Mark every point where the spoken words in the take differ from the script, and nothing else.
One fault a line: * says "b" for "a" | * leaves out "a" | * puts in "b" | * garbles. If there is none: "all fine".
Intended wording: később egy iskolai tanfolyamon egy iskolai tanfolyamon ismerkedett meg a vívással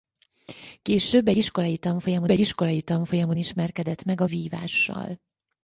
all fine